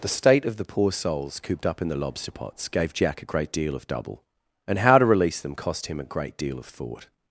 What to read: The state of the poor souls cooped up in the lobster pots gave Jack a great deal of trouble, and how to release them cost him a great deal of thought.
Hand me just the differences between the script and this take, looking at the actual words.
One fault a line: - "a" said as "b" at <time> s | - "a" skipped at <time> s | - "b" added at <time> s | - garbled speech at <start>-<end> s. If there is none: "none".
- "trouble" said as "double" at 3.9 s